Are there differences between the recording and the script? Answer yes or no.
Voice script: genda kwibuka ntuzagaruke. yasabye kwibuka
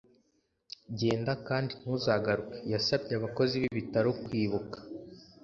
yes